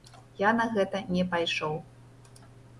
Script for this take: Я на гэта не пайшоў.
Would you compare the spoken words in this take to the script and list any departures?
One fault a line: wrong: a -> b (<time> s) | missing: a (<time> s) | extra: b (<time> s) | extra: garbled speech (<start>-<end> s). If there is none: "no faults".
no faults